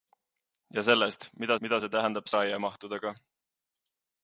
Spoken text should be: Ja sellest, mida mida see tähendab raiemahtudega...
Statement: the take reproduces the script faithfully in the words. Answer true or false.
true